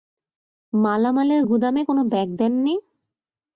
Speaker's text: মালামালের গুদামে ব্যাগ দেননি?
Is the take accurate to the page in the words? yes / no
no